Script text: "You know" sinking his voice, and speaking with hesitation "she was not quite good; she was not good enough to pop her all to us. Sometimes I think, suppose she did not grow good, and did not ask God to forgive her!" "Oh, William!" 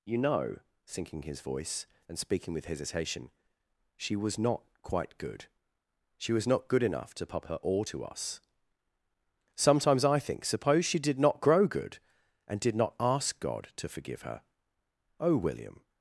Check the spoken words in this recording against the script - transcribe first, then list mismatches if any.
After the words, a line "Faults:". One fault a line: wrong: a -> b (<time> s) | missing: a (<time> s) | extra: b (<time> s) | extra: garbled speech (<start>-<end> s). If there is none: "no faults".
"You know" sinking his voice, and speaking with hesitation "she was not quite good; she was not good enough to pop her all to us. Sometimes I think, suppose she did not grow good, and did not ask God to forgive her!" "Oh, William!"
Faults:
no faults